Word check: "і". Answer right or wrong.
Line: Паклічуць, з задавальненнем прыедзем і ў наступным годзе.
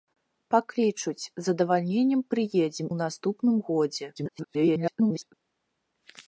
wrong